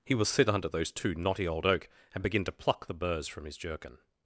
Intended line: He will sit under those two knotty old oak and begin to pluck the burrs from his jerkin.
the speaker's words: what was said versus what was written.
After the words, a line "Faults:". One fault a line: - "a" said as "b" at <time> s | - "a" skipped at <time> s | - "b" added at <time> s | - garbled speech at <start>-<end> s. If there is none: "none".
He will sit under those two knotty old oak and begin to pluck the burrs from his jerkin.
Faults:
none